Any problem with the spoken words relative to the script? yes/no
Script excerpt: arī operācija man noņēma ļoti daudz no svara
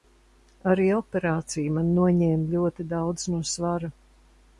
no